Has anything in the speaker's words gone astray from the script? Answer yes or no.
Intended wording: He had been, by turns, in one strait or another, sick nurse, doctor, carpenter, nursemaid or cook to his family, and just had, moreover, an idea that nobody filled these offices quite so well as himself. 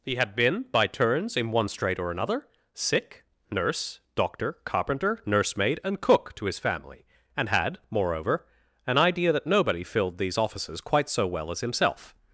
yes